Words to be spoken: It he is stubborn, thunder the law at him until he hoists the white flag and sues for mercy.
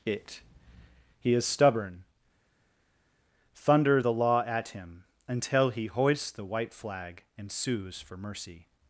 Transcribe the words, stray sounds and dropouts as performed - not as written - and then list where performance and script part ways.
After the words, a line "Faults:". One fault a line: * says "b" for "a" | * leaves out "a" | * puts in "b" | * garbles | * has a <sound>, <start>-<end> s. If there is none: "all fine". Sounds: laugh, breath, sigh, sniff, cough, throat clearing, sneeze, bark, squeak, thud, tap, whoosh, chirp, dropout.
It he is stubborn, thunder the law at him until he hoists the white flag and sues for mercy.
Faults:
all fine